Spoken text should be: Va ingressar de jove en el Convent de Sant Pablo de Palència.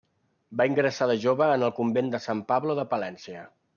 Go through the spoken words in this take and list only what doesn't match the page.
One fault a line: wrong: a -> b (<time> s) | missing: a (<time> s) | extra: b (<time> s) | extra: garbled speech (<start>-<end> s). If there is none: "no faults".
no faults